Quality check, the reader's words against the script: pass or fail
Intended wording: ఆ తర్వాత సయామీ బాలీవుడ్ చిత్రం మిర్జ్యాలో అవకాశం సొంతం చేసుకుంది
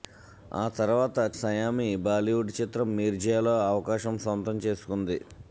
pass